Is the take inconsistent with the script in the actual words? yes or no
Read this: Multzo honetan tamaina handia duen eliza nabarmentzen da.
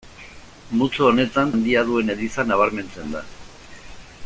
yes